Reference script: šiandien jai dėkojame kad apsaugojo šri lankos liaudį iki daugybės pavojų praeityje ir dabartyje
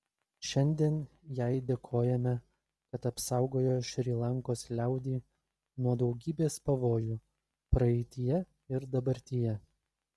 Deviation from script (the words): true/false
true